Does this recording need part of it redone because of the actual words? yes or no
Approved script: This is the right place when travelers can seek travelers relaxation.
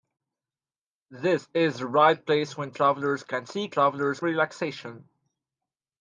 no